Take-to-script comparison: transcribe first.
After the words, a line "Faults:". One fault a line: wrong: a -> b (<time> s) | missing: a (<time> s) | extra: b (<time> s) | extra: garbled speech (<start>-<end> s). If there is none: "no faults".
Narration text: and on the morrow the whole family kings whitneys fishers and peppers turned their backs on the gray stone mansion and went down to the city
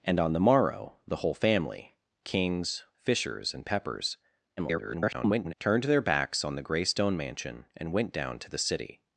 and on the morrow the whole family kings fishers and peppers [garbled] turned their backs on the gray stone mansion and went down to the city
Faults:
missing: whitneys (2.8 s)
extra: garbled speech (4.6-5.5 s)